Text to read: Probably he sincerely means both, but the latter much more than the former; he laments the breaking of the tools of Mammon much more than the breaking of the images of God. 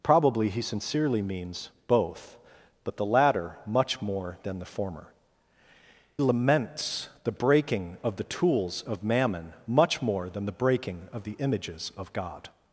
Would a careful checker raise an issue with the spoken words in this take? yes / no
yes